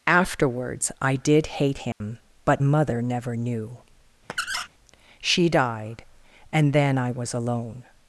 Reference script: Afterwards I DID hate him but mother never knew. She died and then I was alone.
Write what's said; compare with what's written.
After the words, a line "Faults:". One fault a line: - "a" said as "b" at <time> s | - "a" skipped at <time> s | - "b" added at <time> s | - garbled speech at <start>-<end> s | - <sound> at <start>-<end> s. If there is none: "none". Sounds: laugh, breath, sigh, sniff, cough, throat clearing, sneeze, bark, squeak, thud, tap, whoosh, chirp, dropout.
Afterwards I DID hate him but mother never knew. She died and then I was alone.
Faults:
- dropout at 1.9-2.0 s
- squeak at 4.3-4.7 s